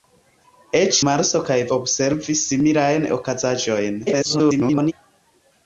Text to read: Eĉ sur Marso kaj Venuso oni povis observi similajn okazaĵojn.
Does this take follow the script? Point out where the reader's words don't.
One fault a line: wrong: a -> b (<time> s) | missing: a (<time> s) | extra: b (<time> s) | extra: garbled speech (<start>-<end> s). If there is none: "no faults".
missing: sur (1.0 s)
missing: Venuso oni povis (1.6 s)
extra: garbled speech (4.1-4.9 s)